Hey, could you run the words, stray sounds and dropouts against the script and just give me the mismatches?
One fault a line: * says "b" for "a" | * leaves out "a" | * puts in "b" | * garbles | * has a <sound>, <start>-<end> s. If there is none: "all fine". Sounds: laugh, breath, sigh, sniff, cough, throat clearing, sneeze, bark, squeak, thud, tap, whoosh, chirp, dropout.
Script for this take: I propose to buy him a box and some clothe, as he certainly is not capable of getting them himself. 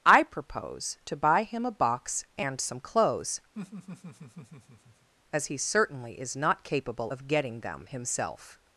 * says "clothes" for "clothe"
* has a laugh, 3.5-5.1 s